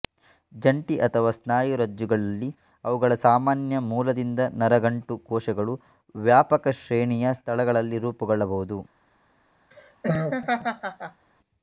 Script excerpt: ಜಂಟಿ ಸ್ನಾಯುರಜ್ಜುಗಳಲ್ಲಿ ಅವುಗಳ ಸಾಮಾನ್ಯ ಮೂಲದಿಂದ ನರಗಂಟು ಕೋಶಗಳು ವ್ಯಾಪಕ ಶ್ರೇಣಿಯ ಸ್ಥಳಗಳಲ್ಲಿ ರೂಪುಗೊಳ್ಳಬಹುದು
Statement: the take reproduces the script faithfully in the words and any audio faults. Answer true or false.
false